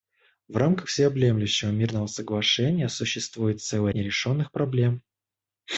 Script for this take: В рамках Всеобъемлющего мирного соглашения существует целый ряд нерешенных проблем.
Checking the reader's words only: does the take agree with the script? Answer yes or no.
no